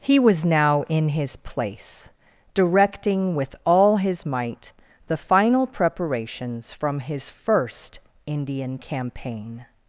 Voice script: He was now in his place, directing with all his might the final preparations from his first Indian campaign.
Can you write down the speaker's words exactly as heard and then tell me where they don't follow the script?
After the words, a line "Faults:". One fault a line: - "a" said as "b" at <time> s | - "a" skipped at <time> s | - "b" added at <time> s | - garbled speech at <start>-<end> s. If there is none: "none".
He was now in his place, directing with all his might the final preparations from his first Indian campaign.
Faults:
none